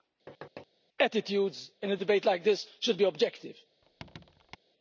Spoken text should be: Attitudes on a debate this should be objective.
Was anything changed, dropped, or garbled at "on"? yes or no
yes